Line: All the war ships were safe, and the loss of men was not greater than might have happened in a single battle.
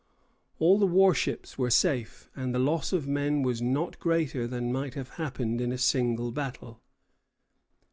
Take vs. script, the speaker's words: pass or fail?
pass